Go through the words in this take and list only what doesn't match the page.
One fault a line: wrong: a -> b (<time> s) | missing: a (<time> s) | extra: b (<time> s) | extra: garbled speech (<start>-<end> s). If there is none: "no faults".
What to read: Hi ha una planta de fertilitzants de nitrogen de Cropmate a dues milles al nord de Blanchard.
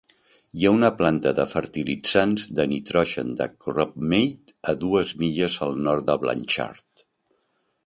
no faults